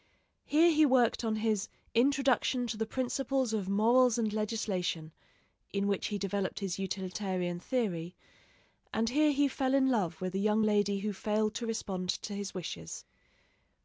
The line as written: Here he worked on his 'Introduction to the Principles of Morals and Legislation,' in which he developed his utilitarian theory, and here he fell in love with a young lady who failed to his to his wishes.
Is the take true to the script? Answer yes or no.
no